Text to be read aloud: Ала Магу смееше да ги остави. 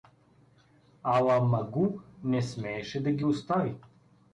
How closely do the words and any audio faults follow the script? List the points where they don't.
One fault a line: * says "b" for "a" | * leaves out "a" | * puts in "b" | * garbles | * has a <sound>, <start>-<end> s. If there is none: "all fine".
* puts in "не"